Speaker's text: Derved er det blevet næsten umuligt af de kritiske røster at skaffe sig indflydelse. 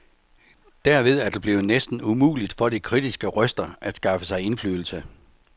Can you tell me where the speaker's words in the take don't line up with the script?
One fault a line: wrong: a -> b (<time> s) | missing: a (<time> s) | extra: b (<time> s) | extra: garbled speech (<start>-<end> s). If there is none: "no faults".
wrong: af -> for (2.6 s)